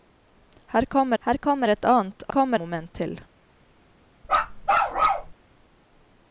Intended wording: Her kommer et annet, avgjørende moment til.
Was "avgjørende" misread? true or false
true